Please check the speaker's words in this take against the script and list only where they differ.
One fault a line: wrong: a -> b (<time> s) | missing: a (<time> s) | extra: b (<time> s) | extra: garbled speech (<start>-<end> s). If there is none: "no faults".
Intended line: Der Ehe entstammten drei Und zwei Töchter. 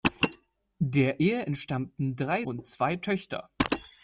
no faults